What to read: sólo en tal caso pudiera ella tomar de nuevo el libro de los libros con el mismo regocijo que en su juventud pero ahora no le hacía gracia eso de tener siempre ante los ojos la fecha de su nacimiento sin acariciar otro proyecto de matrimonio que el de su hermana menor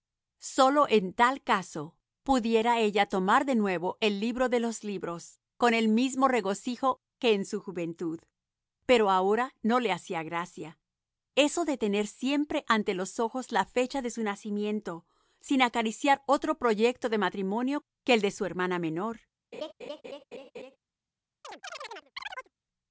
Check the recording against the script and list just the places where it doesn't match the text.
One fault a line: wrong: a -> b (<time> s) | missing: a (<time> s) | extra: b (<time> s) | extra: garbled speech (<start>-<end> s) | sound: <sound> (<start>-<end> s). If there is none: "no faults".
sound: laugh (19.5-20.8 s)
sound: chirp (21.4-22.5 s)